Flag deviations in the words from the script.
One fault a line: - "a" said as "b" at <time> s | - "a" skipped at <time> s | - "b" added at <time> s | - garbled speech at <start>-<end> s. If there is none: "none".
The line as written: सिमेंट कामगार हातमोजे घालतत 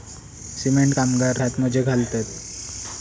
none